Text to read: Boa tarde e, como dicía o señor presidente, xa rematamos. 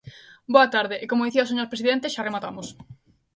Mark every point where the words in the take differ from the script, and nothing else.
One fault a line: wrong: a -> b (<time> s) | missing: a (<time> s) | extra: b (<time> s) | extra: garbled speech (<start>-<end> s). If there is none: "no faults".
no faults